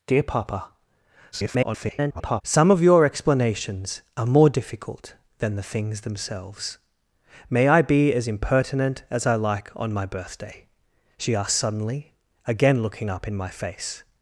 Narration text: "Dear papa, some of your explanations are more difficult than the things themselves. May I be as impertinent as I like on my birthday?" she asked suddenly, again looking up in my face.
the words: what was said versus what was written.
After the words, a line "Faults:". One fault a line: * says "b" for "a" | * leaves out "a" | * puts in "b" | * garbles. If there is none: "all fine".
"Dear papa, [garbled] some of your explanations are more difficult than the things themselves. May I be as impertinent as I like on my birthday?" she asked suddenly, again looking up in my face.
Faults:
* garbles